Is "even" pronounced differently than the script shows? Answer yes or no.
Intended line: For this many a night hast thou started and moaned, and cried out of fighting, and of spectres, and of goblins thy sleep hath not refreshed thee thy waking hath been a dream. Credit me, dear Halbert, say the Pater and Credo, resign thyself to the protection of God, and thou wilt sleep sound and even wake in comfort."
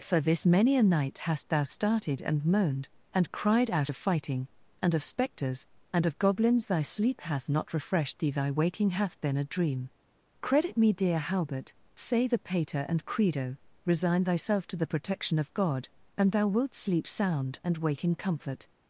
yes